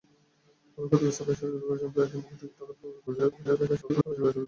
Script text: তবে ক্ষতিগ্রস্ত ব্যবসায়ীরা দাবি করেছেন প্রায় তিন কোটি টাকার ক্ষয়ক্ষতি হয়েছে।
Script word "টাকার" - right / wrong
right